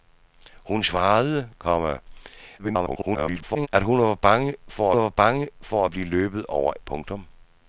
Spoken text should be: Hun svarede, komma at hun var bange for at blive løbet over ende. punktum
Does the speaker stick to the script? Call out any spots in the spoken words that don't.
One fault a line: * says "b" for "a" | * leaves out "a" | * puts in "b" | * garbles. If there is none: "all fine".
* garbles
* puts in "var bange for"
* leaves out "ende"